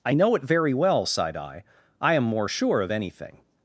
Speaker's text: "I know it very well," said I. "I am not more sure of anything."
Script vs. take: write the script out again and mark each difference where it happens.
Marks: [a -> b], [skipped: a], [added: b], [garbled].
"I know it very well," [said -> sighed] I. "I am [skipped: not] more sure of anything."